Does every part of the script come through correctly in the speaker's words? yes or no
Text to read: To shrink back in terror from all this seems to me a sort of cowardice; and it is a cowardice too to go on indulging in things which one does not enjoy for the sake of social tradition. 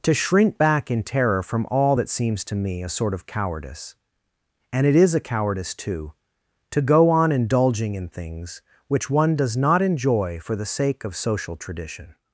no